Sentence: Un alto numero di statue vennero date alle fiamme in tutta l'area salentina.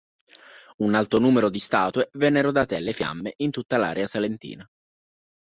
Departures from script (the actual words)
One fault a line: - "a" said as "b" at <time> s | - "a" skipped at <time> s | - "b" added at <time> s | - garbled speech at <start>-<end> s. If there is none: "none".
none